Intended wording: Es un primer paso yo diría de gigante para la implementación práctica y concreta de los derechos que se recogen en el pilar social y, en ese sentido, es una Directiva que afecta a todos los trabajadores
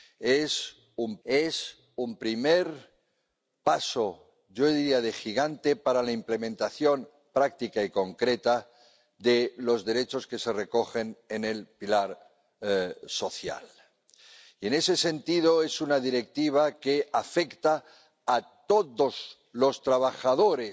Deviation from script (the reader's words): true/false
true